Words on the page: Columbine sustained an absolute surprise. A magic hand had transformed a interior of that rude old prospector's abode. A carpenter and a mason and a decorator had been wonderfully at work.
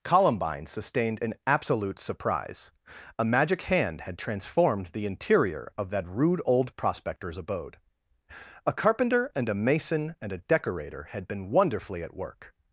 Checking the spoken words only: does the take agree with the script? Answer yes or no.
no